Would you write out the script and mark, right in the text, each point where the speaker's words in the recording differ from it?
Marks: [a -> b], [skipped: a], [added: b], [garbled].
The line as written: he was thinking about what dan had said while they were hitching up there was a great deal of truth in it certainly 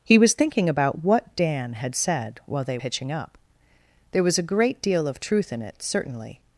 he was thinking about what dan had said while they [skipped: were] hitching up there was a great deal of truth in it certainly